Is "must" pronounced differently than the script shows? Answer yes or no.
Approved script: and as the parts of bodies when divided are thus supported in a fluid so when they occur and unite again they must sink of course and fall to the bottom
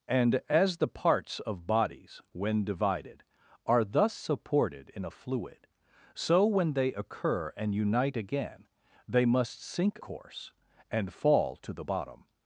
no